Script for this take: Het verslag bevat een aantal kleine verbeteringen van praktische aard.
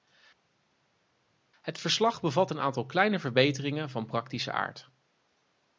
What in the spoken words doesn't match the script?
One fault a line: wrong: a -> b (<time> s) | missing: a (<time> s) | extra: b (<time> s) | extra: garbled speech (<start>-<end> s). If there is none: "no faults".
no faults